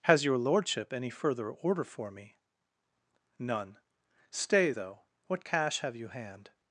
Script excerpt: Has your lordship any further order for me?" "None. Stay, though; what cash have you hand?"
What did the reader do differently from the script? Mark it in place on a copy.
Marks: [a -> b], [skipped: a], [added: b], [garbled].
Has your lordship any further order for me?" "None. Stay, though; what cash have you hand?"